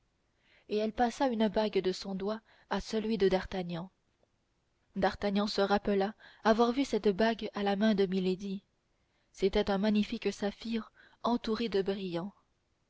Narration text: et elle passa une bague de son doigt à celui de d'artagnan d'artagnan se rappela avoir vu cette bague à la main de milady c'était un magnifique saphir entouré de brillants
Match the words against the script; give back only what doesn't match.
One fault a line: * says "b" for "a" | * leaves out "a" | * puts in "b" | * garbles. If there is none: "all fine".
all fine